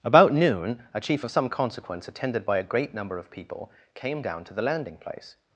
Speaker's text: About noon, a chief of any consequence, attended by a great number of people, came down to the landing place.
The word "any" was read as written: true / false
false